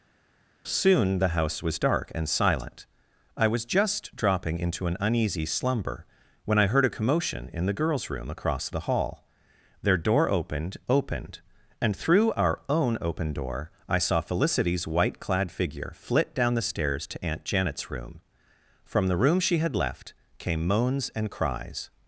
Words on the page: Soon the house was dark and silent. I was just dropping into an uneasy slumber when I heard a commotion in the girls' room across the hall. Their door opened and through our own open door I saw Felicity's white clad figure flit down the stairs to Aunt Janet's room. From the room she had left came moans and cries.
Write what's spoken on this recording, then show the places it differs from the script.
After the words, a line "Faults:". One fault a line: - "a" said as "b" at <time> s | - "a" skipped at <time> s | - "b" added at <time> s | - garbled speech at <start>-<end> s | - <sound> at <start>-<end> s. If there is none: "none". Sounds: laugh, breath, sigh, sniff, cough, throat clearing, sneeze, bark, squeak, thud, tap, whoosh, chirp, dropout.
Soon the house was dark and silent. I was just dropping into an uneasy slumber when I heard a commotion in the girls' room across the hall. Their door opened opened and through our own open door I saw Felicity's white clad figure flit down the stairs to Aunt Janet's room. From the room she had left came moans and cries.
Faults:
- "opened" added at 10.9 s